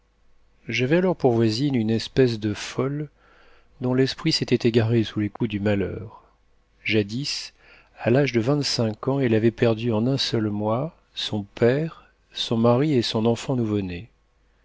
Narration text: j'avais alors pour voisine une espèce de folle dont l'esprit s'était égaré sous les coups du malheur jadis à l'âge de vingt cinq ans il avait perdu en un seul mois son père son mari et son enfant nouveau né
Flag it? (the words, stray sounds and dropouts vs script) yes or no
yes